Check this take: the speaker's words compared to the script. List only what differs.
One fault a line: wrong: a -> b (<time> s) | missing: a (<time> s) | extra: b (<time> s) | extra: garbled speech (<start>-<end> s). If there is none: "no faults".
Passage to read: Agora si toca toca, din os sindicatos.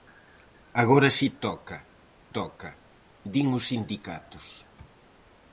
no faults